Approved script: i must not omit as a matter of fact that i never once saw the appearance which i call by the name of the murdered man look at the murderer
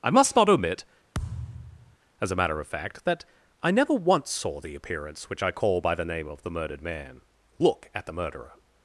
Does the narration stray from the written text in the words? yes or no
no